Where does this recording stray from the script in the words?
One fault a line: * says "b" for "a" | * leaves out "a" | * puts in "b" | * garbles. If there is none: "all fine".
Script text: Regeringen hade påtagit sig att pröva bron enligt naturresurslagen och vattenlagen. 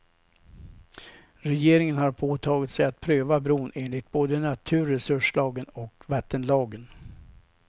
* says "har" for "hade"
* puts in "både"